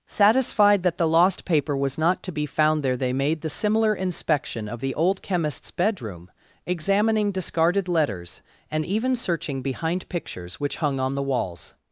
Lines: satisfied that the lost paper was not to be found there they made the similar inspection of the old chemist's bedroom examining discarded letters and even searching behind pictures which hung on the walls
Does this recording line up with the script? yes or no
yes